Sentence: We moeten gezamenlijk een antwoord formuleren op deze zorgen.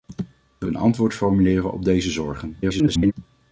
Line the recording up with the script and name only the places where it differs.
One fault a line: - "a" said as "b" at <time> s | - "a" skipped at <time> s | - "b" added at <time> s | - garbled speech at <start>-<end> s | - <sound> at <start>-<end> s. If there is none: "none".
- "moeten gezamenlijk" skipped at 0.7 s
- garbled speech at 2.6-3.1 s